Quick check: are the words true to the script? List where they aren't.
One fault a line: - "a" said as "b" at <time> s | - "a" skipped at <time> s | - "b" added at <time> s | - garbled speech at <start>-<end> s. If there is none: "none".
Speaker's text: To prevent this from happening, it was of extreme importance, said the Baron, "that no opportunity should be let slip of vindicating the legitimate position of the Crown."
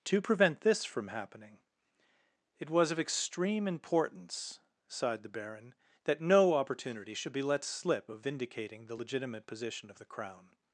- "said" said as "sighed" at 4.9 s